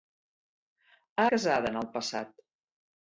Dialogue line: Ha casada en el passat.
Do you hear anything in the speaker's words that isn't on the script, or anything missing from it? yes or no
no